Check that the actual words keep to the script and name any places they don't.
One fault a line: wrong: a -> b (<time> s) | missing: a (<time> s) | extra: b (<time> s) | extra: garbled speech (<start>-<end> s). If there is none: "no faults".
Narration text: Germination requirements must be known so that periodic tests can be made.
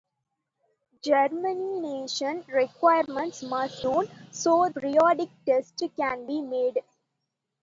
missing: be (3.9 s)
missing: that (4.7 s)